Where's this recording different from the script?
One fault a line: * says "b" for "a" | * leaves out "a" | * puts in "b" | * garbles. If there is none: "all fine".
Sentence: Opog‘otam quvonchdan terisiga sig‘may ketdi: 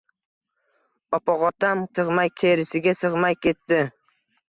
* says "sig‘may" for "quvonchdan"